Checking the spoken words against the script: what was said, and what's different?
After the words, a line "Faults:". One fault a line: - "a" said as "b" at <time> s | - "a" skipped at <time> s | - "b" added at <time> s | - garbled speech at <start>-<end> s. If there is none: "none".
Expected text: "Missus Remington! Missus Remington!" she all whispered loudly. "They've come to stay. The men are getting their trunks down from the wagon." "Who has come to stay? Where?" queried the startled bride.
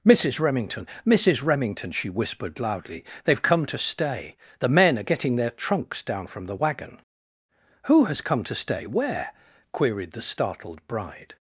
"Missus Remington! Missus Remington!" she whispered loudly. "They've come to stay. The men are getting their trunks down from the wagon." "Who has come to stay? Where?" queried the startled bride.
Faults:
- "all" skipped at 2.1 s